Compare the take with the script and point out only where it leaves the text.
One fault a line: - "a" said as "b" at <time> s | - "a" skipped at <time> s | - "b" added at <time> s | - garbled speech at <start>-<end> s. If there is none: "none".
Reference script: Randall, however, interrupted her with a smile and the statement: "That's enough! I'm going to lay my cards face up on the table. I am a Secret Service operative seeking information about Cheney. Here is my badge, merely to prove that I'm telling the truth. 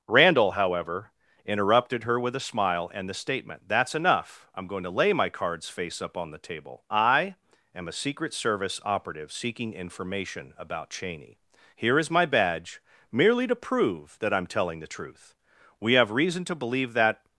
- "We have reason to believe that" added at 15.8 s